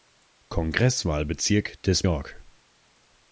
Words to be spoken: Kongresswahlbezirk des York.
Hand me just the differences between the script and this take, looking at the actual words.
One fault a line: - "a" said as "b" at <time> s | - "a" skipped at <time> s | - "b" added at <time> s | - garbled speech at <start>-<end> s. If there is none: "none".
none